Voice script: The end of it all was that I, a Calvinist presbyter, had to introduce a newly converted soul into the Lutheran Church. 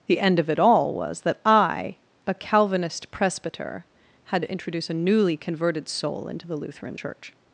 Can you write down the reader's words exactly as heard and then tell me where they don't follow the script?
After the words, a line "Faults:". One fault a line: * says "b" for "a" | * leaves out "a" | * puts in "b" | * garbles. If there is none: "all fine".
The end of it all was that I, a Calvinist presbyter, had to introduce a newly converted soul into the Lutheran Church.
Faults:
all fine